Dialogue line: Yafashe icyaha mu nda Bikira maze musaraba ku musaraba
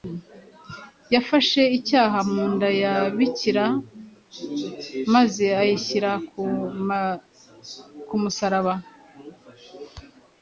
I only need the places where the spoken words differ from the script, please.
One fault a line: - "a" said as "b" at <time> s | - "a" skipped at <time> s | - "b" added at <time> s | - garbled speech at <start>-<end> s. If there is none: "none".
- "ya" added at 2.8 s
- "musaraba" said as "ayishyira" at 5.6 s